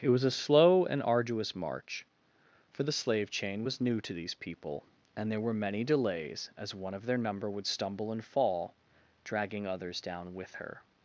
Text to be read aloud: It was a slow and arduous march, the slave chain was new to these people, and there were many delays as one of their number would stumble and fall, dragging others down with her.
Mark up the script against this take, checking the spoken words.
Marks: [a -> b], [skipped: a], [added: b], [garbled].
It was a slow and arduous march, [added: for] the slave chain was new to these people, and there were many delays as one of their number would stumble and fall, dragging others down with her.